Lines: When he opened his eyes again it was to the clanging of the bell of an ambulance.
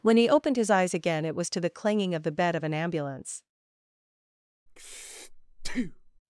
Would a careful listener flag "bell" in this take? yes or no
yes